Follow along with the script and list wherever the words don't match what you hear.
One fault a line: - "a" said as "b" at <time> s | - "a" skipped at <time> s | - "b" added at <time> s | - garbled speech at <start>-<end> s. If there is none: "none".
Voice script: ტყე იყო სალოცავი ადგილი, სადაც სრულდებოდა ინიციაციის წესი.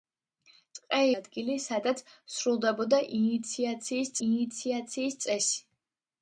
- "იყო სალოცავი" skipped at 1.0 s
- "ინიციაციის" added at 4.3 s